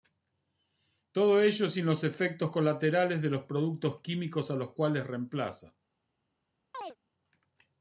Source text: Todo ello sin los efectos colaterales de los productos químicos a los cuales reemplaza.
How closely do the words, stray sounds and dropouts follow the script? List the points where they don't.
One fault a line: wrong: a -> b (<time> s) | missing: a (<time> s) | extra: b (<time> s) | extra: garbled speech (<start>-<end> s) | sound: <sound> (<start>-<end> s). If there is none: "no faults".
sound: chirp (6.7-7.0 s)